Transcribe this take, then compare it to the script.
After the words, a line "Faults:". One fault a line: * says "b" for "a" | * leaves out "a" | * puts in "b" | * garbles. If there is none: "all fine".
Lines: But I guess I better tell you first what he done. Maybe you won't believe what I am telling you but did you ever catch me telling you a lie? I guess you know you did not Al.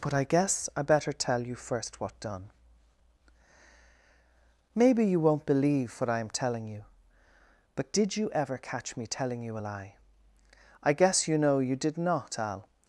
But I guess I better tell you first what done. Maybe you won't believe what I am telling you but did you ever catch me telling you a lie? I guess you know you did not Al.
Faults:
* leaves out "he"